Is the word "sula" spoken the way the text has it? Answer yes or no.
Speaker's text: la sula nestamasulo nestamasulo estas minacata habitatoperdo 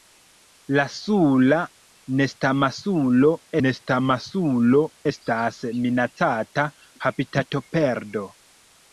yes